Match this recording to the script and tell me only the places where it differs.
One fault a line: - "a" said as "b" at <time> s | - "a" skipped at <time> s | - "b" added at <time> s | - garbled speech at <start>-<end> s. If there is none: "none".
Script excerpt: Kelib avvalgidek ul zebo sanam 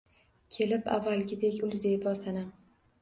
none